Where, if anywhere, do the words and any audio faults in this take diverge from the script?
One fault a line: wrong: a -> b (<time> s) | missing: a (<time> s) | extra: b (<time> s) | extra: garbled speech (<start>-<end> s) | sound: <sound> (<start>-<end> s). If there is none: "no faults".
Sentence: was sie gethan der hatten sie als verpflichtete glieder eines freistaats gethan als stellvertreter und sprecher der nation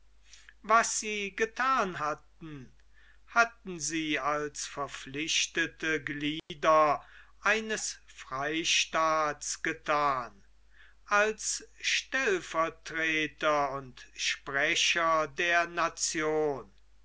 wrong: der -> hatten (2.0 s)
sound: dropout (6.4-6.5 s)